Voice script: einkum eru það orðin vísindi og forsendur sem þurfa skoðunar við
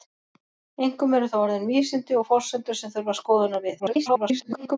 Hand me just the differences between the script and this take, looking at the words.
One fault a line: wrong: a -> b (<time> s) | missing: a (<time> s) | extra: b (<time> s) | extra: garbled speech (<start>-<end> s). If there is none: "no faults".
extra: garbled speech (3.8-4.8 s)